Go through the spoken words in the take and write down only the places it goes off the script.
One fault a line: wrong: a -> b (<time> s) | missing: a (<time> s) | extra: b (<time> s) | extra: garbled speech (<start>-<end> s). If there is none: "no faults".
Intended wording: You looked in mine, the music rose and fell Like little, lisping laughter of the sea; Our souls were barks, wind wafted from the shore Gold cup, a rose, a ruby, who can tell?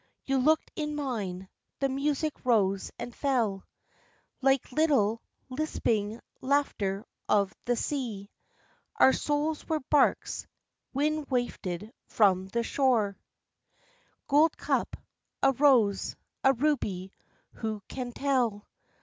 no faults